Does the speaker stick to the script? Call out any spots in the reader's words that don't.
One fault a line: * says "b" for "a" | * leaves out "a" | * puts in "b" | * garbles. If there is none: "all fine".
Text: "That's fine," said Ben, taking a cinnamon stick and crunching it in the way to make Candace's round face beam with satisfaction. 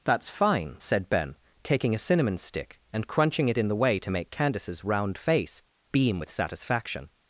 all fine